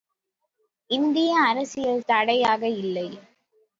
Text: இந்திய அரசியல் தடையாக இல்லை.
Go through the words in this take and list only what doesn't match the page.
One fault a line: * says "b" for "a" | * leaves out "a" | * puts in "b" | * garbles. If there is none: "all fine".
all fine